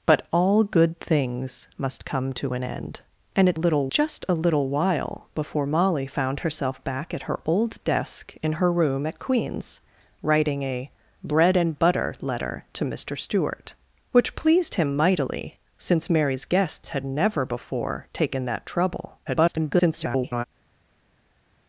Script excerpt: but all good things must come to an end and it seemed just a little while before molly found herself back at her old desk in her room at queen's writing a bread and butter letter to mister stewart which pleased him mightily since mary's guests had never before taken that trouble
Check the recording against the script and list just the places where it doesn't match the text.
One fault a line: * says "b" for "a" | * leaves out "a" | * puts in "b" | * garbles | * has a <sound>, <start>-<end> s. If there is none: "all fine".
* says "little" for "seemed"
* garbles